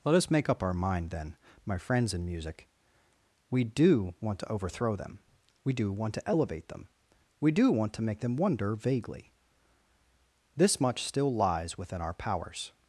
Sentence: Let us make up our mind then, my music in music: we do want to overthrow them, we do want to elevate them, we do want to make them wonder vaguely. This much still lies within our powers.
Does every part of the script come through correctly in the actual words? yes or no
no